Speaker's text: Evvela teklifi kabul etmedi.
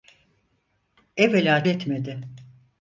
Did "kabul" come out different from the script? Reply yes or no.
yes